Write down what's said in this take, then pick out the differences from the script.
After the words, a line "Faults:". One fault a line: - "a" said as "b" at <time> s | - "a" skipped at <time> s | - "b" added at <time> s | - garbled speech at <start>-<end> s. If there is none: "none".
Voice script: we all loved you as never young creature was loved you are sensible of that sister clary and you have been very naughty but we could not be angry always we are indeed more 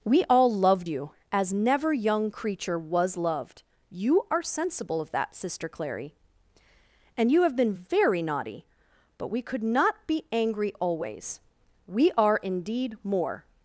we all loved you as never young creature was loved you are sensible of that sister clary and you have been very naughty but we could not be angry always we are indeed more
Faults:
none